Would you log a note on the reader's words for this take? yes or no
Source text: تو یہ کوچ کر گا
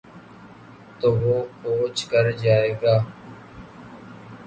yes